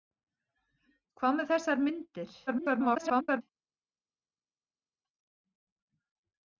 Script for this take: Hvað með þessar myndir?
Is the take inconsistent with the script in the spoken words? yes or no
yes